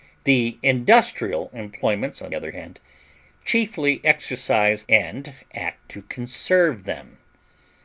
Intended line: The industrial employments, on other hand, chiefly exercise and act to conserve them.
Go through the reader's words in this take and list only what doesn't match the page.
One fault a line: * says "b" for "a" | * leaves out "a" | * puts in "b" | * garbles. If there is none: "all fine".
all fine